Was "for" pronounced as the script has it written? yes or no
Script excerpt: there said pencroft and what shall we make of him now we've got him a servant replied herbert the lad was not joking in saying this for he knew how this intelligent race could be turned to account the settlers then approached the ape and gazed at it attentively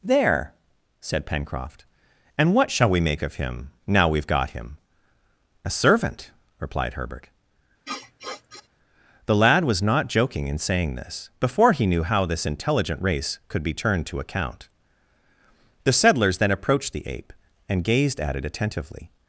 no